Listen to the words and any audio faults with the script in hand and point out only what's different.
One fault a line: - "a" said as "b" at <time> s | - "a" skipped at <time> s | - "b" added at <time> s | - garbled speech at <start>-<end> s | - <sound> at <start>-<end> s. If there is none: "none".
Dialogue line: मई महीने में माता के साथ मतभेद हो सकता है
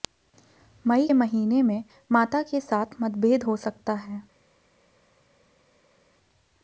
none